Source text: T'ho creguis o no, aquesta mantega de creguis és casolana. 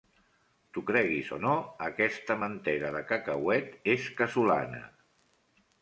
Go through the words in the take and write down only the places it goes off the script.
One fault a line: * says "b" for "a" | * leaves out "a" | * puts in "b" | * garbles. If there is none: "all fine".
* says "cacauet" for "creguis"